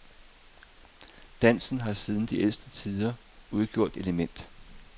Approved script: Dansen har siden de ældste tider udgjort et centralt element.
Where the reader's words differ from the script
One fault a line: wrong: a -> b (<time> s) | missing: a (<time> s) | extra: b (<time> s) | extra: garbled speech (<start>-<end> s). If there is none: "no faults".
missing: et centralt (4.0 s)